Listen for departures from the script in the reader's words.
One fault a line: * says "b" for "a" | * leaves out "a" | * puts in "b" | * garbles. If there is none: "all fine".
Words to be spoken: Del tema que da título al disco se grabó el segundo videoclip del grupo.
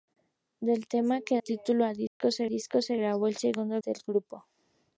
* leaves out "da"
* puts in "disco se"
* leaves out "videoclip"